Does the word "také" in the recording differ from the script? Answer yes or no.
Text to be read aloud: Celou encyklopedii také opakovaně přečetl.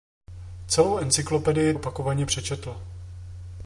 yes